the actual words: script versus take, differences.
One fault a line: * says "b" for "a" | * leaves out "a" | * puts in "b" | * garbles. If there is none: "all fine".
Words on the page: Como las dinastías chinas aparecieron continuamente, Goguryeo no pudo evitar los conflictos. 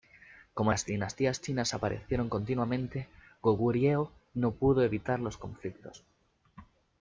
all fine